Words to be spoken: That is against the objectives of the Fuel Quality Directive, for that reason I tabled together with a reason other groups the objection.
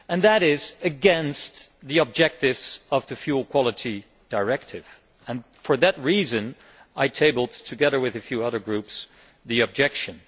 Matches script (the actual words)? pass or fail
fail